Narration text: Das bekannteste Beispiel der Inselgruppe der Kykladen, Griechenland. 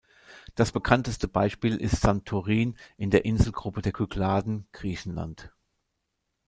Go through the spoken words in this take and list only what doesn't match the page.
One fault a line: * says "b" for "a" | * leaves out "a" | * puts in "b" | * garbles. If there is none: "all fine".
* puts in "ist Santorin in"